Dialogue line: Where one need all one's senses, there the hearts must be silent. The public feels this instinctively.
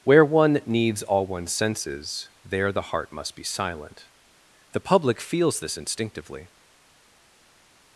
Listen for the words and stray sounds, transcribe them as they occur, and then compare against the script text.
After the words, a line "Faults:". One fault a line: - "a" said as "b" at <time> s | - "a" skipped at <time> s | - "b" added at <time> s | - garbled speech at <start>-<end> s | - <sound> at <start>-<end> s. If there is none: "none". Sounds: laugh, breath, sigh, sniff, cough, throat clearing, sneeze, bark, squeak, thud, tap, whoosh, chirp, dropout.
Where one needs all one's senses, there the heart must be silent. The public feels this instinctively.
Faults:
- "need" said as "needs" at 0.7 s
- "hearts" said as "heart" at 2.9 s